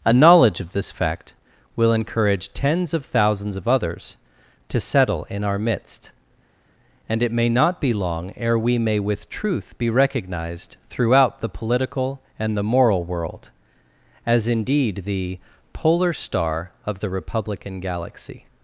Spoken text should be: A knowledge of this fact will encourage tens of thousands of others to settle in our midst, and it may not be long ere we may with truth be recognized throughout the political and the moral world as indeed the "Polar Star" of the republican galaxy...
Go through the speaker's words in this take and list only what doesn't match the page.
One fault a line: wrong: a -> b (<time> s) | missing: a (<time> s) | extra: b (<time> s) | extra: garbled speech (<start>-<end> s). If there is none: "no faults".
no faults